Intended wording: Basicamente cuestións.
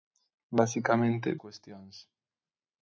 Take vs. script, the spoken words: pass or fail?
pass